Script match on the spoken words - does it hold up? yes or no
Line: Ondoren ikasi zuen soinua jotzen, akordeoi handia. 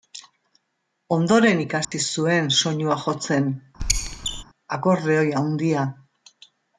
yes